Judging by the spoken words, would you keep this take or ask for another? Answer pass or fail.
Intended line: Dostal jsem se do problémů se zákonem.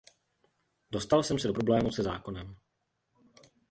pass